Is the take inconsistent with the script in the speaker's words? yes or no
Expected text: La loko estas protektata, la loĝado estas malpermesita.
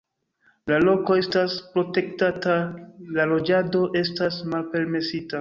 no